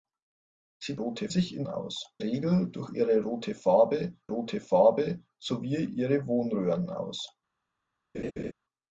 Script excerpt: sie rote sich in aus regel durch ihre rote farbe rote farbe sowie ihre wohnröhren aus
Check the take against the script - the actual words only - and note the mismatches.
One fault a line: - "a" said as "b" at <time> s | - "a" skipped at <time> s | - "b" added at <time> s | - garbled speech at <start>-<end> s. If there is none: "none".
none